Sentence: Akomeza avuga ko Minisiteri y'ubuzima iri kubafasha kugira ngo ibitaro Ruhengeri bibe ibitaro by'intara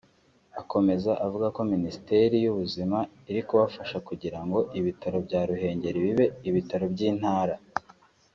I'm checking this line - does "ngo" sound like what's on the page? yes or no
yes